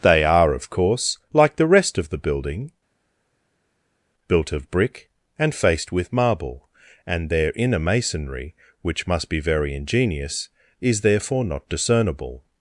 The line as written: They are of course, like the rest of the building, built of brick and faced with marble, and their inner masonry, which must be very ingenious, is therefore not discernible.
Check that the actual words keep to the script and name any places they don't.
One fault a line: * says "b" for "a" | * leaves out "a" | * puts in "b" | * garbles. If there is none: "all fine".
all fine